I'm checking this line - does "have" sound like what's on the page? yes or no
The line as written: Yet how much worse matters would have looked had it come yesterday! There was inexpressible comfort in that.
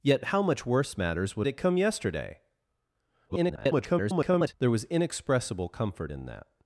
no